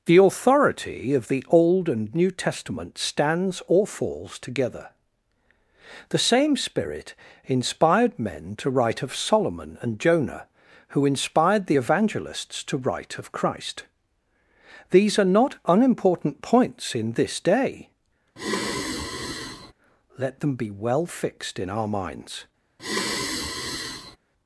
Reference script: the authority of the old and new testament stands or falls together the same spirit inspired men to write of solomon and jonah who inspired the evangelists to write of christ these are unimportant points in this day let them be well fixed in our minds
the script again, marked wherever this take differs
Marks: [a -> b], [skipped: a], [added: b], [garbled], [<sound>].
the authority of the old and new testament stands or falls together the same spirit inspired men to write of solomon and jonah who inspired the evangelists to write of christ these are [added: not] unimportant points in this day [sigh] let them be well fixed in our minds [sigh]